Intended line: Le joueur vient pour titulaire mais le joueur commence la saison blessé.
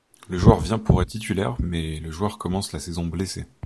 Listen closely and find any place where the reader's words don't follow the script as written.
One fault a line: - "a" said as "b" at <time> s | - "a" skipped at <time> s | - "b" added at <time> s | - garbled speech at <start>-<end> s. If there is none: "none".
none